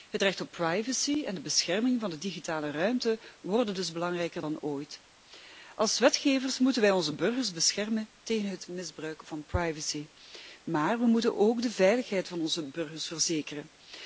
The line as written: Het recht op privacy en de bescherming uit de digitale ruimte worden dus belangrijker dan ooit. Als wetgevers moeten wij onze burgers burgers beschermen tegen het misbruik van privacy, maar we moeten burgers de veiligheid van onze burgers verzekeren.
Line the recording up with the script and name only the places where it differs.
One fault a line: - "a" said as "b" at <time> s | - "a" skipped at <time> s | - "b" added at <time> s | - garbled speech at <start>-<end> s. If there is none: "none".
- "uit" said as "van" at 2.0 s
- "burgers" skipped at 7.5 s
- "burgers" said as "ook" at 11.4 s